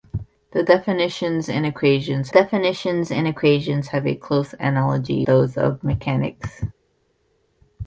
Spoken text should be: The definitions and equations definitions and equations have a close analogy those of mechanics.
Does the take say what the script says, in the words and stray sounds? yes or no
yes